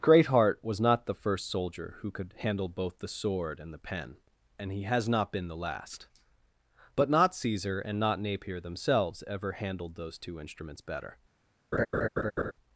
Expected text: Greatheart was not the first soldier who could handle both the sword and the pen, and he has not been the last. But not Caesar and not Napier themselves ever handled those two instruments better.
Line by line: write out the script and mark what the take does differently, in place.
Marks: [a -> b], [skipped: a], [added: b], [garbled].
Greatheart was not the first soldier who could handle both the sword and the pen, and he has not been the last. But not Caesar and not Napier themselves ever handled those two instruments better.